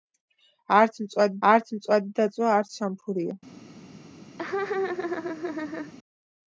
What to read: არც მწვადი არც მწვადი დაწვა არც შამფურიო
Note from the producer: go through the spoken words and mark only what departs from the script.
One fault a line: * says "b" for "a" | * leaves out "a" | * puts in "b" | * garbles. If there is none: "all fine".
all fine